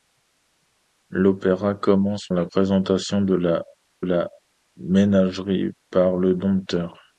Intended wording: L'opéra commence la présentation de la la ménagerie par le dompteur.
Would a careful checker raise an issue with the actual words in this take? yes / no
no